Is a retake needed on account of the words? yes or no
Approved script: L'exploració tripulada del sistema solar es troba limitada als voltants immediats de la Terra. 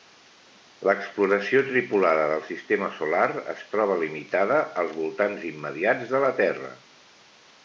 no